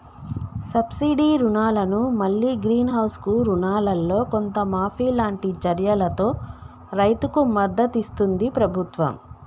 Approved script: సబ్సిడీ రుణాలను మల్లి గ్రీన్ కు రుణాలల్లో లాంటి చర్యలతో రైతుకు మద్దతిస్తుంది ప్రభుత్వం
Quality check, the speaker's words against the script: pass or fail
fail